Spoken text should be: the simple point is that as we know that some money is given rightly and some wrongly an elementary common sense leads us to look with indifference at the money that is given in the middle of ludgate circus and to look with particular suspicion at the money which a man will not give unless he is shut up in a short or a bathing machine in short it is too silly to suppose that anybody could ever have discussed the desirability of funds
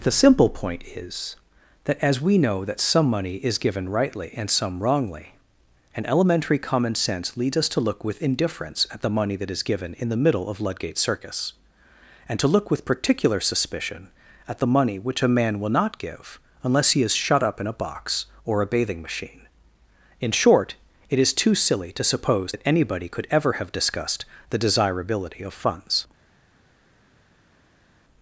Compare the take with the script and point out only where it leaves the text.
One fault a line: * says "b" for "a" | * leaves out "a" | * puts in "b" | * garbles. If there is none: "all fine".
* says "box" for "short"